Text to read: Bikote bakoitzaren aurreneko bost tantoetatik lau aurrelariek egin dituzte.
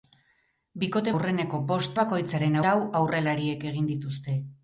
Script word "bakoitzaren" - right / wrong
wrong